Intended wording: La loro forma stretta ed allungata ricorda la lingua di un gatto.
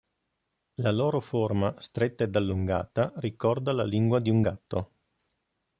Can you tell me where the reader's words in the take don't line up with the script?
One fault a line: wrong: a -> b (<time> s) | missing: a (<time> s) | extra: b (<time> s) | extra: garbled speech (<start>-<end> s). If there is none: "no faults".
no faults